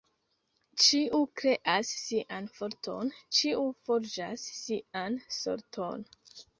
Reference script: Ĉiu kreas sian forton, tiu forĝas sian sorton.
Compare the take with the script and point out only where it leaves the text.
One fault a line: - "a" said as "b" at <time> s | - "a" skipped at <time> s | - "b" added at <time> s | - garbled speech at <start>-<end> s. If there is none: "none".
- "tiu" said as "ĉiu" at 3.4 s